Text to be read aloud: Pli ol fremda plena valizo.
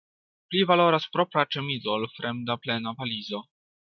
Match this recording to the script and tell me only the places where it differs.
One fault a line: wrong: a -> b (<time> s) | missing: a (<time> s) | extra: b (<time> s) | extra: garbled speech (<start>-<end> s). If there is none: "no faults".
extra: valoras propra ĉemizo (0.7 s)